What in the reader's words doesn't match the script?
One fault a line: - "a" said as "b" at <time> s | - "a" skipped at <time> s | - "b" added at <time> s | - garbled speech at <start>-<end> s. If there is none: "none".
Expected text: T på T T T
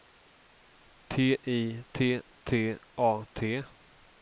- "på" said as "I" at 1.4 s
- "A" added at 3.0 s